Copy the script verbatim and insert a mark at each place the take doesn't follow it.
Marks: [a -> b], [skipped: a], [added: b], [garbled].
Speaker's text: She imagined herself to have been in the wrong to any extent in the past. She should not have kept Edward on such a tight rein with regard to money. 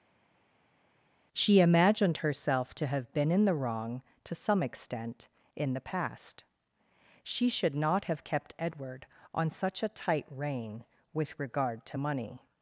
She imagined herself to have been in the wrong to [any -> some] extent in the past. She should not have kept Edward on such a tight rein with regard to money.